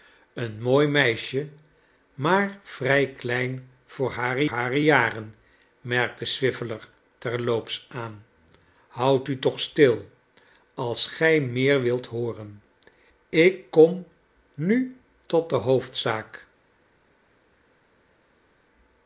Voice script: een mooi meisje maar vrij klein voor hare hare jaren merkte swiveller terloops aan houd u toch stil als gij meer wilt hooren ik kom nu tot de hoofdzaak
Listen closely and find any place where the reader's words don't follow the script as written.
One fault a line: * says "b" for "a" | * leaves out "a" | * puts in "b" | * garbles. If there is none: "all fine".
all fine